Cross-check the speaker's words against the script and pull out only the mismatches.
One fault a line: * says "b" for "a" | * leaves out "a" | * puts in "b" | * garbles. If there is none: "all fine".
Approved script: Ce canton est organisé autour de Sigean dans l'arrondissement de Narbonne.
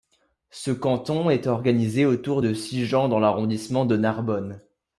all fine